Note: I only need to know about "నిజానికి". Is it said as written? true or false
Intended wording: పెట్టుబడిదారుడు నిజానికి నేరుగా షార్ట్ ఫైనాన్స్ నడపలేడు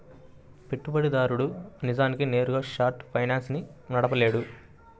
true